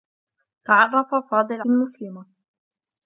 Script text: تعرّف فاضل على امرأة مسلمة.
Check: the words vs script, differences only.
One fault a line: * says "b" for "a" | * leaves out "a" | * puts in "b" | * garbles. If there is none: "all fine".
* leaves out "على امرأة"